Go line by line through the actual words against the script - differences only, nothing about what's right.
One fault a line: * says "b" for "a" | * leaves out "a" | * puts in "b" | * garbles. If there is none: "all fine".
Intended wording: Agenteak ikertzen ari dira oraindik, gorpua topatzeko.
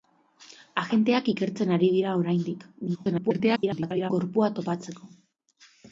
* garbles